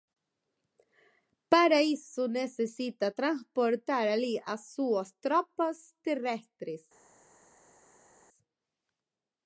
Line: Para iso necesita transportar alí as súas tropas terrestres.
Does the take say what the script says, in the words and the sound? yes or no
yes